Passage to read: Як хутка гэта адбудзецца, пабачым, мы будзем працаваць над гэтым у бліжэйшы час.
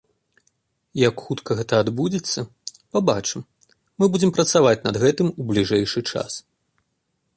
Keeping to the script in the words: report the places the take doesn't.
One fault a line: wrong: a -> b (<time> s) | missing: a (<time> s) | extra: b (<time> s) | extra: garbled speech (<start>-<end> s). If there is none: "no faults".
no faults